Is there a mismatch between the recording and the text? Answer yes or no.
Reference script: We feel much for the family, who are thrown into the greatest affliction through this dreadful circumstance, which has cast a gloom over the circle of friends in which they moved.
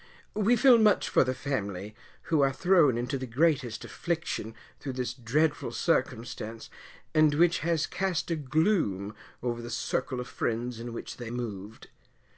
yes